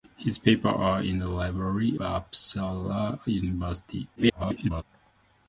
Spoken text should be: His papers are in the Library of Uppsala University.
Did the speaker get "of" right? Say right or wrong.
wrong